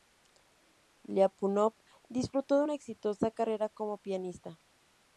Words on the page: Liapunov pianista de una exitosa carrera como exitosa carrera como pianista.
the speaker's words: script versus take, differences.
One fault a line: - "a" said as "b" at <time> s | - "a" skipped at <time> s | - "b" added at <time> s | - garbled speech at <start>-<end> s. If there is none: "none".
- "pianista" said as "disfrutó" at 2.1 s
- "exitosa carrera como" skipped at 4.0 s